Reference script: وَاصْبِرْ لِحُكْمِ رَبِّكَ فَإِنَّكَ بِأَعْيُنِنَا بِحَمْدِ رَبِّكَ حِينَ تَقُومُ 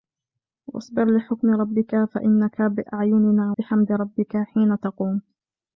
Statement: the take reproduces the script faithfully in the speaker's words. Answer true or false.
true